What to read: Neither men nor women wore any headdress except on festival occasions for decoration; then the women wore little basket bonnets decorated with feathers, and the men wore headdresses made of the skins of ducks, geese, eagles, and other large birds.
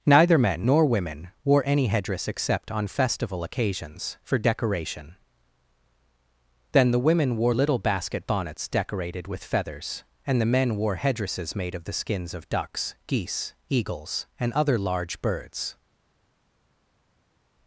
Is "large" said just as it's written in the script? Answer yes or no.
yes